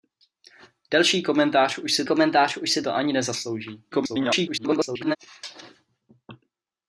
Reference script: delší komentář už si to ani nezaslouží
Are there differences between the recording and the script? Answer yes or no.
yes